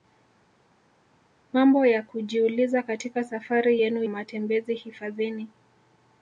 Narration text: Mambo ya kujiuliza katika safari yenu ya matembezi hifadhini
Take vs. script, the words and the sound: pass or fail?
fail